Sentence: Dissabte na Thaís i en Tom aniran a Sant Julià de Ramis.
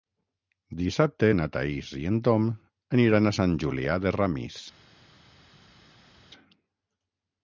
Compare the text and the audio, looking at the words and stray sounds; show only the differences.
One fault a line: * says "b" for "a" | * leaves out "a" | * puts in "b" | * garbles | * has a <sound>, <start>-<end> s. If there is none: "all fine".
all fine